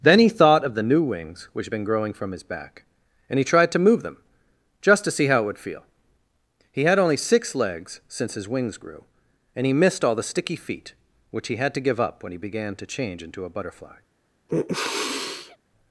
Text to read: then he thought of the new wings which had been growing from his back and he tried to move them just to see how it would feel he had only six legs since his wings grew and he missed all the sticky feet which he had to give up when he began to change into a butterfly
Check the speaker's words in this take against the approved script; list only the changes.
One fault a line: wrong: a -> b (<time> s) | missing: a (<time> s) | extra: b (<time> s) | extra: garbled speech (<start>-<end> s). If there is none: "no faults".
no faults